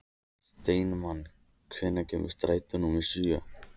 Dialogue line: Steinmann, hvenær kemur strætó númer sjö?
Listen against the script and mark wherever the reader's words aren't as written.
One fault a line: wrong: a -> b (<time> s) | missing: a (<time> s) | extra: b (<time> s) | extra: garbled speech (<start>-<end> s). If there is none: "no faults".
no faults